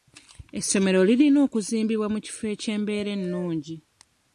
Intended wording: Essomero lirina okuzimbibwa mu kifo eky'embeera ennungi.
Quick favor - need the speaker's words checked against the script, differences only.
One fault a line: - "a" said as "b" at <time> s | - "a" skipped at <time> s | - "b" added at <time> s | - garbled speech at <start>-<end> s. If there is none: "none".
none